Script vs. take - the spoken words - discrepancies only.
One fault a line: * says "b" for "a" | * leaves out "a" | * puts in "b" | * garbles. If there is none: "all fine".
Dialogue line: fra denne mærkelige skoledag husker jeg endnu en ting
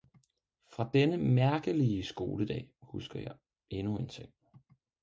all fine